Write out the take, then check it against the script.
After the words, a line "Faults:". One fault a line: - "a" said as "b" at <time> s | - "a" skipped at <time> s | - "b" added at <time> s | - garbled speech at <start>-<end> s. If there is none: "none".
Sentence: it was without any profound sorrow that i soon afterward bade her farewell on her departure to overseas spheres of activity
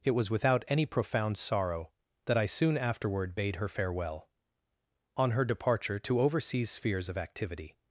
it was without any profound sorrow that i soon afterward bade her farewell on her departure to overseas spheres of activity
Faults:
none